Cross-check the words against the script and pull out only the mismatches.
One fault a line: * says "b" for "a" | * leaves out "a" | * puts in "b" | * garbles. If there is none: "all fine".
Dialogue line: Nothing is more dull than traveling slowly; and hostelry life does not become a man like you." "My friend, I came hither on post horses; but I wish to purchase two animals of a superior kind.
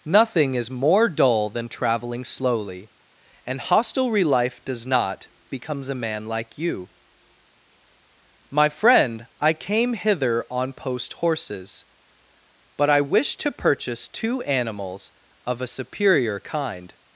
* says "becomes" for "become"